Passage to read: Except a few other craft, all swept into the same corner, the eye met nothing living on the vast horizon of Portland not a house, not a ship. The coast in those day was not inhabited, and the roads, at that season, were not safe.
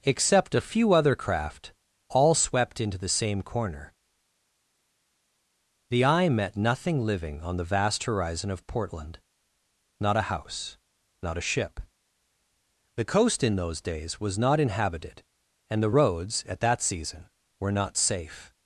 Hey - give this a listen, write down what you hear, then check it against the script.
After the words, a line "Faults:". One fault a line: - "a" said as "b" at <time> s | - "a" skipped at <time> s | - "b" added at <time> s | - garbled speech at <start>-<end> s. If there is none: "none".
Except a few other craft, all swept into the same corner, the eye met nothing living on the vast horizon of Portland not a house, not a ship. The coast in those days was not inhabited, and the roads, at that season, were not safe.
Faults:
- "day" said as "days" at 13.8 s